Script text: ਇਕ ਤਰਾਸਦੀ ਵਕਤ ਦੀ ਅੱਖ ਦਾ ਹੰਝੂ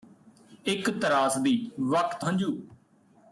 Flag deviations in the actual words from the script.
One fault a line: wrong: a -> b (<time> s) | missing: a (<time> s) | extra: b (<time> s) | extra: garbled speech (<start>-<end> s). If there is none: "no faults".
missing: ਦੀ ਅੱਖ ਦਾ (2.2 s)